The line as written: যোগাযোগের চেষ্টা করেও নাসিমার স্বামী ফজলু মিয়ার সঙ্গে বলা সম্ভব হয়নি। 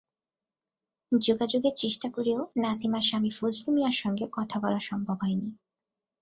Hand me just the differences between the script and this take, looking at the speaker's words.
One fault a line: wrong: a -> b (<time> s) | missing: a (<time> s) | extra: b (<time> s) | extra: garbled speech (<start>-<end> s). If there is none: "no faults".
extra: কথা (4.3 s)